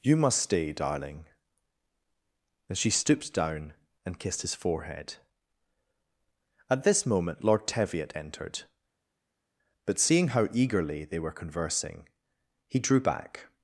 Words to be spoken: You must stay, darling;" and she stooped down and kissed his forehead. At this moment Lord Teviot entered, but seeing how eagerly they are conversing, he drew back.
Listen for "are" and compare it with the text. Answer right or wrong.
wrong